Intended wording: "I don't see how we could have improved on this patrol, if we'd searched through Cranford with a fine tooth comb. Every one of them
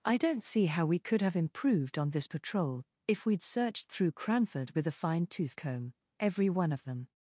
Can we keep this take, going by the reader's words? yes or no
yes